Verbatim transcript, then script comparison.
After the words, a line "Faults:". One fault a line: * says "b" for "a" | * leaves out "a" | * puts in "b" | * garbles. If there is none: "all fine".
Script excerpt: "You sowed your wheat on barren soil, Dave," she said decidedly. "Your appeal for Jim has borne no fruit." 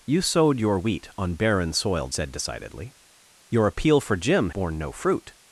"You sowed your wheat on barren soil, Said decidedly. "Your appeal for Jim borne no fruit."
Faults:
* leaves out "Dave she"
* leaves out "has"